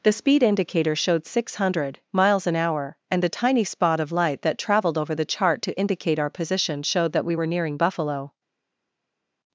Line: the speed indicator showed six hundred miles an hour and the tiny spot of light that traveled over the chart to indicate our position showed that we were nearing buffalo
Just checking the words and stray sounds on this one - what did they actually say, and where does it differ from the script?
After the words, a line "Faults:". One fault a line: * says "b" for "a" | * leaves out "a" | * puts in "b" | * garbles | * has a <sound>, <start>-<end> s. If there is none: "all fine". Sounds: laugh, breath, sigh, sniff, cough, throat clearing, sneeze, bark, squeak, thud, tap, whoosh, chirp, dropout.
the speed indicator showed six hundred miles an hour and the tiny spot of light that traveled over the chart to indicate our position showed that we were nearing buffalo
Faults:
all fine